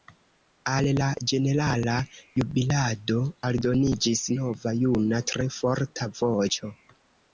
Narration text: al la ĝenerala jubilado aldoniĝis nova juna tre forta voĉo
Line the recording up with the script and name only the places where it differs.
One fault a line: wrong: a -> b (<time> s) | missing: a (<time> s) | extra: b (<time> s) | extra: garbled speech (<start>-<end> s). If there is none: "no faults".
no faults